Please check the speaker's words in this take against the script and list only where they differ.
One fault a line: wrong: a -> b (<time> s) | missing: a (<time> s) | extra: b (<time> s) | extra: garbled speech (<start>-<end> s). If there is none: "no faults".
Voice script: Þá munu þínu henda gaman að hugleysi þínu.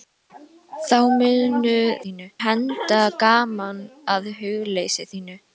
no faults